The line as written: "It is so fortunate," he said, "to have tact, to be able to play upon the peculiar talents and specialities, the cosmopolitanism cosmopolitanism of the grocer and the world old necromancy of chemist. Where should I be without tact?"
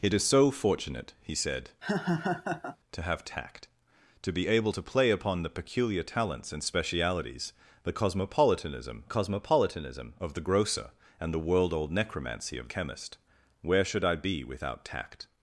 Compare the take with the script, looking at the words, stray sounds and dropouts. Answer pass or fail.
fail